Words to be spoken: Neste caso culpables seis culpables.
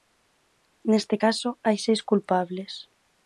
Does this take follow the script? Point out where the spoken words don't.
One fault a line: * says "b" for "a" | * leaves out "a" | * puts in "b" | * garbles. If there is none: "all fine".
* says "hai" for "culpables"